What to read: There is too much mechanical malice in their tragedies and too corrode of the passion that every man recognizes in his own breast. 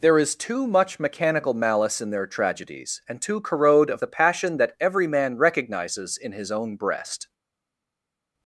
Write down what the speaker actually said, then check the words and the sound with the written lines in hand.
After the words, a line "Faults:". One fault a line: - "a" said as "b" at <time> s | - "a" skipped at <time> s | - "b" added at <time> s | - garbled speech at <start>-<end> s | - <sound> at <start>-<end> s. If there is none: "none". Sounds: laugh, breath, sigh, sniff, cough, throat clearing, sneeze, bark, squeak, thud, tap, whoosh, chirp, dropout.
There is too much mechanical malice in their tragedies and too corrode of the passion that every man recognizes in his own breast.
Faults:
none